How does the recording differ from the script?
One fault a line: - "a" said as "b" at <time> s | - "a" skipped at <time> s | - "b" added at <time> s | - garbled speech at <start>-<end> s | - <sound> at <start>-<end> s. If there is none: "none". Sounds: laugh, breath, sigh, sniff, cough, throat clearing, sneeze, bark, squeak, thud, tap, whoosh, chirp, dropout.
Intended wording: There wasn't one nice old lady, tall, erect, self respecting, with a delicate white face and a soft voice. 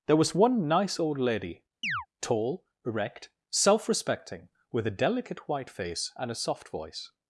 - "wasn't" said as "was" at 0.1 s
- chirp at 1.8-2.1 s